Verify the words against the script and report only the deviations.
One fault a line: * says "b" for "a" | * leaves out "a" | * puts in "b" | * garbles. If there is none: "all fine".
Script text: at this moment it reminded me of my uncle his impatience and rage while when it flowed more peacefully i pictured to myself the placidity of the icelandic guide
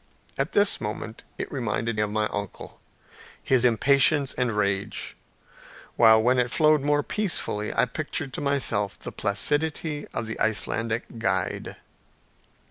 * leaves out "me"